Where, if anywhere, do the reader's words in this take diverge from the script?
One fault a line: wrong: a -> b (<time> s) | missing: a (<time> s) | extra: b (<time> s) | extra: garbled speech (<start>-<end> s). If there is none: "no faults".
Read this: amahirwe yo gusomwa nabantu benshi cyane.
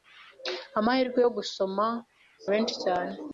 missing: nabantu (1.9 s)